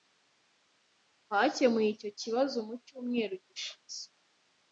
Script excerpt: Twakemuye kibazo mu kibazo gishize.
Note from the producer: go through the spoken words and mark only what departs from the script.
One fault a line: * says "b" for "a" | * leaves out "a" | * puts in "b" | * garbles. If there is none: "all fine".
* puts in "icyo"
* says "cyumweru" for "kibazo"